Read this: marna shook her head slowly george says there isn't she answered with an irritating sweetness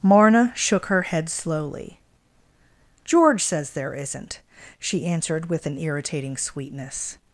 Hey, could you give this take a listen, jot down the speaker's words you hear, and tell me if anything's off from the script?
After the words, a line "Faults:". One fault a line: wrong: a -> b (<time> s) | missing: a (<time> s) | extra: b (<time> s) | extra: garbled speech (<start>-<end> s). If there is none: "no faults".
marna shook her head slowly george says there isn't she answered with an irritating sweetness
Faults:
no faults